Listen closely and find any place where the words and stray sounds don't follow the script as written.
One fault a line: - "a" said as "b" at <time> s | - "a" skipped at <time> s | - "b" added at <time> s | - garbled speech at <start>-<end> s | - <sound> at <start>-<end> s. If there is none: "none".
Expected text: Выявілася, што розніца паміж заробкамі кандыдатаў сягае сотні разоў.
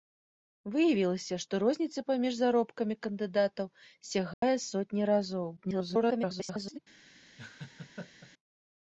- dropout at 4.3-4.4 s
- garbled speech at 5.6-6.8 s
- laugh at 7.4-8.3 s